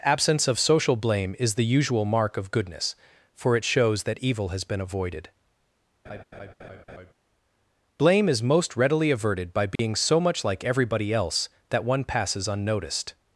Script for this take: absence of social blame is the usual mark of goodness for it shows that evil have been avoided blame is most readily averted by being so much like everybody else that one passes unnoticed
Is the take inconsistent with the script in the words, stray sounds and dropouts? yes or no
yes